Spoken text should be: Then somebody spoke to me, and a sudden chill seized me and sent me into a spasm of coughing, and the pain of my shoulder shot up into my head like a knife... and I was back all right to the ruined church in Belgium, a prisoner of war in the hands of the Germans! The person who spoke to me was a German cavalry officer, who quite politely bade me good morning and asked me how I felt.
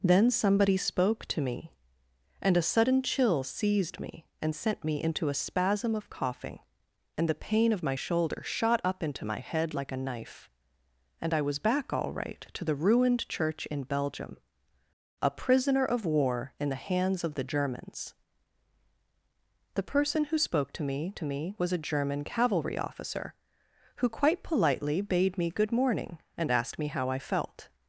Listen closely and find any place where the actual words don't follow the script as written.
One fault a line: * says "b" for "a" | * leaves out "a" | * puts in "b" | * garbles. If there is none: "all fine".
* puts in "to me"